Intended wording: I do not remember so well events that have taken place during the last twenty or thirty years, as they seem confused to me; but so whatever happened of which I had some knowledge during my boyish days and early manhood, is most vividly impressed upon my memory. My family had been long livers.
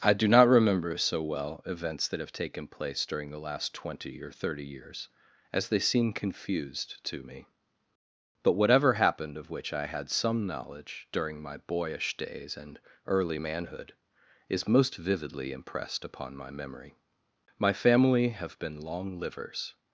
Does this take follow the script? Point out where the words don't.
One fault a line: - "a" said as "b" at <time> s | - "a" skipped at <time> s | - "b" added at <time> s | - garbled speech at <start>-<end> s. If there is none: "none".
- "so" skipped at 8.6 s
- "had" said as "have" at 18.3 s